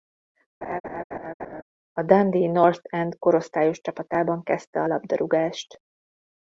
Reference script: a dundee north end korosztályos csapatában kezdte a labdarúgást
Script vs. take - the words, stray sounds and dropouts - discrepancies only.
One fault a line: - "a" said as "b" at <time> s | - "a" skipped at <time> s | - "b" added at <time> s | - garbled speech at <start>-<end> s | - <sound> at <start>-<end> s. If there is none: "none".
- laugh at 0.6-1.6 s